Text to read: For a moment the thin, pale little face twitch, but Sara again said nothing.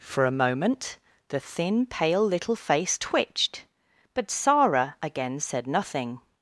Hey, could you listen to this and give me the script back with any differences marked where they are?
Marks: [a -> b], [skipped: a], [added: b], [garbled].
For a moment the thin, pale little face [twitch, -> twitched] but Sara again said nothing.